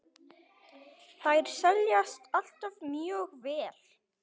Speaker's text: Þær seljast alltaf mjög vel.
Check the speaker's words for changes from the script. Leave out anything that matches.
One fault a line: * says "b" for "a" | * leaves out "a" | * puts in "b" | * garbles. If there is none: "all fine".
all fine